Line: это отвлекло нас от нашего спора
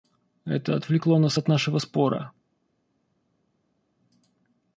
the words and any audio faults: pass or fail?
pass